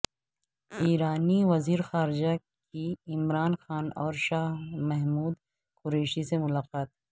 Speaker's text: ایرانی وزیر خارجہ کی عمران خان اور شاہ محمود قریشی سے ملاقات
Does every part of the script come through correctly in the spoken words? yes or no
yes